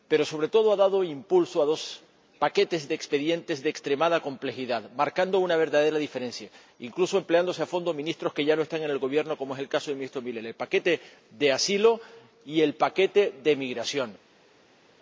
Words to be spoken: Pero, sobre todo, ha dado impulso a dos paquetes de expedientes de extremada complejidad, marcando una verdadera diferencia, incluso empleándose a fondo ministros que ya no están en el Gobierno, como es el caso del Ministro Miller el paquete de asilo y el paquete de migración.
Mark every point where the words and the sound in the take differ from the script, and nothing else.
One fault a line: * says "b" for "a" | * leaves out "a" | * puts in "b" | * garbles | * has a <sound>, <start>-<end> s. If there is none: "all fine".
all fine